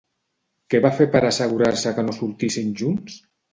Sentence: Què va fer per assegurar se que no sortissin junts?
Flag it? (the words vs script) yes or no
no